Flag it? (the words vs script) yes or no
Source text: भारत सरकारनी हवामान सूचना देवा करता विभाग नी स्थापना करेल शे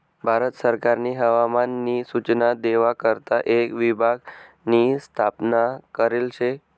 yes